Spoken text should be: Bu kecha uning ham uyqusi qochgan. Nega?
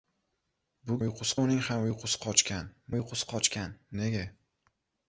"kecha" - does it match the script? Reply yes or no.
no